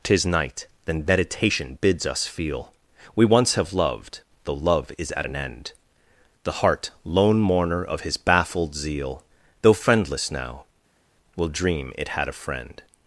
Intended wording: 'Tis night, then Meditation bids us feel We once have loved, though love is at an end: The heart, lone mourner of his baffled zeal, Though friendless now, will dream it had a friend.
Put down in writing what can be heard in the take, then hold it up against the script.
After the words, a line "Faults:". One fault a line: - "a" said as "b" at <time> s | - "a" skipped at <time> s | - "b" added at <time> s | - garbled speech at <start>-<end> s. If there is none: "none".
'Tis night, then Meditation bids us feel We once have loved, though love is at an end: The heart, lone mourner of his baffled zeal, Though friendless now, will dream it had a friend.
Faults:
none